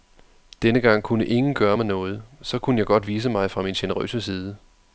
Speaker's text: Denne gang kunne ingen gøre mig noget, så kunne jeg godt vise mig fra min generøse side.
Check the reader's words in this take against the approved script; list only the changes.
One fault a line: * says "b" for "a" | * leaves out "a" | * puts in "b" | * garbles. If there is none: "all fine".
all fine